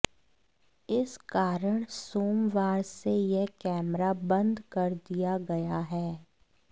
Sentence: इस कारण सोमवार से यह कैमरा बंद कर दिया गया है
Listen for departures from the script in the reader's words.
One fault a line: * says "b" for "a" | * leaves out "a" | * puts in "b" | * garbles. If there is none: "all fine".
all fine